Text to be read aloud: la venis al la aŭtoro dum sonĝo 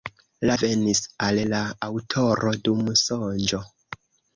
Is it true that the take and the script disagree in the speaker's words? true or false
false